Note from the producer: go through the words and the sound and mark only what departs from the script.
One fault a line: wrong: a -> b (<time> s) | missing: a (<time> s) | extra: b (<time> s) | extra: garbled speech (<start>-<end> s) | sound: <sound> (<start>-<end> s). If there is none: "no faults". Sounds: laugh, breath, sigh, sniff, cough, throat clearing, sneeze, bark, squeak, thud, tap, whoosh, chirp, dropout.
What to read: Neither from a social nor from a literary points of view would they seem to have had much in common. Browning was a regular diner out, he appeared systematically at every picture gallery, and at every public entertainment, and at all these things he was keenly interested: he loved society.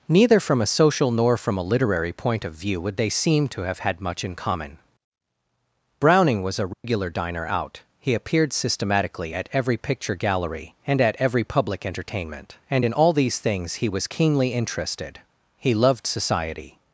wrong: points -> point (2.1 s)
sound: dropout (6.7-6.8 s)
wrong: at -> in (12.8 s)